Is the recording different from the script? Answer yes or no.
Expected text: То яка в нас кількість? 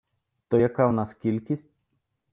no